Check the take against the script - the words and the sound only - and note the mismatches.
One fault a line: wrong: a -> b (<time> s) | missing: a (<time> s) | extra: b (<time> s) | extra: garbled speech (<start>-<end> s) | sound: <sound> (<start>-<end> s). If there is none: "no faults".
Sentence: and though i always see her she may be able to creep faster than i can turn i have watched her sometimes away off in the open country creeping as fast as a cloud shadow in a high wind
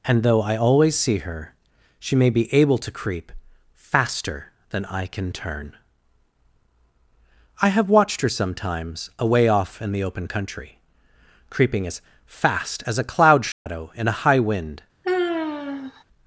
sound: dropout (13.5-13.7 s)
sound: sigh (15.0-16.0 s)